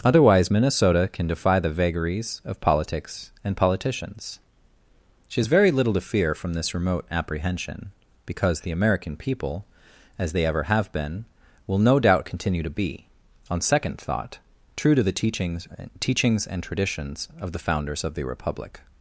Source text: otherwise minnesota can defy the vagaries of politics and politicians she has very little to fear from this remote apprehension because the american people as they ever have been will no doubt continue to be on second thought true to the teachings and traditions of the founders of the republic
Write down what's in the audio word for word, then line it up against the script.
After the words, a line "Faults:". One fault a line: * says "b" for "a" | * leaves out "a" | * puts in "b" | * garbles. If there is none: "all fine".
otherwise minnesota can defy the vagaries of politics and politicians she has very little to fear from this remote apprehension because the american people as they ever have been will no doubt continue to be on second thought true to the teachings teachings and traditions of the founders of the republic
Faults:
* puts in "teachings"